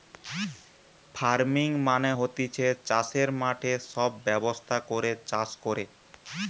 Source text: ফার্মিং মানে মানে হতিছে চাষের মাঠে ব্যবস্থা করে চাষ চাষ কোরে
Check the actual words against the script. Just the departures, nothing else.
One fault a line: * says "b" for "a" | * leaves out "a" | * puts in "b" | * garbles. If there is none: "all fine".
* leaves out "মানে"
* puts in "সব"
* leaves out "চাষ"